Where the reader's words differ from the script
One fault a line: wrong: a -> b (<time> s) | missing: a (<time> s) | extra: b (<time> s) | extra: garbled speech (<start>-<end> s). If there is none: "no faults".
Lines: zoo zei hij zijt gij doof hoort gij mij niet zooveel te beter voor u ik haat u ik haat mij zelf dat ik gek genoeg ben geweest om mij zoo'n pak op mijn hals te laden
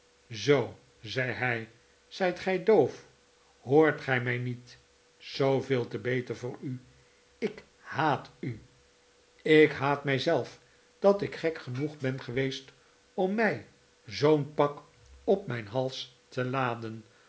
no faults